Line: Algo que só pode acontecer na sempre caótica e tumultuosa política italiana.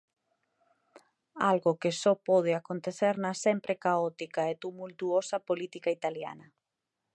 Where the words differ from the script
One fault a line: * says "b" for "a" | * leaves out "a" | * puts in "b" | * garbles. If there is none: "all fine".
all fine